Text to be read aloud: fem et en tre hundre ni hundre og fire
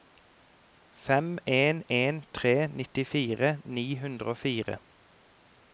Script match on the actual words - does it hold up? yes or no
no